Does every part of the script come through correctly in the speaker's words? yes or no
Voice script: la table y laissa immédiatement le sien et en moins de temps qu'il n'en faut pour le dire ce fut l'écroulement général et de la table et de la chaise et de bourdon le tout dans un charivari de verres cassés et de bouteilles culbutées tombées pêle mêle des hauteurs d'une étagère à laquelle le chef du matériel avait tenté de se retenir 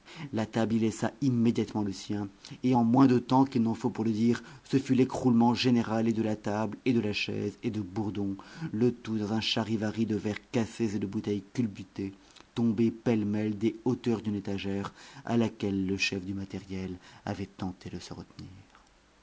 yes